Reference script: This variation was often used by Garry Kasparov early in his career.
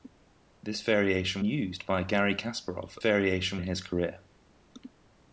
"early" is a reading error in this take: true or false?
true